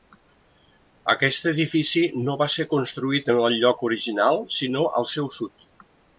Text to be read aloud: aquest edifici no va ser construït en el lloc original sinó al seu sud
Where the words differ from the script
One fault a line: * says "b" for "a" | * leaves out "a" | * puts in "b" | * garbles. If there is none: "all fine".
all fine